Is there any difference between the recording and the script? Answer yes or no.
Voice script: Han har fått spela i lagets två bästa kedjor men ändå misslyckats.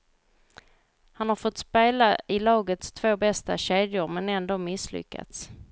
no